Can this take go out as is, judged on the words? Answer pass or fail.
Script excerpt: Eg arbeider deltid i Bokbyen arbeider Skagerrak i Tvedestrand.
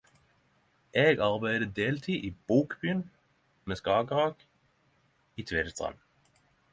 fail